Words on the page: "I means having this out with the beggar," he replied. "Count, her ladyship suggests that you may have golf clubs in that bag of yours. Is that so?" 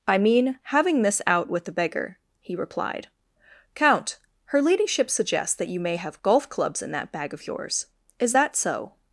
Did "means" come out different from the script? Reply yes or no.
yes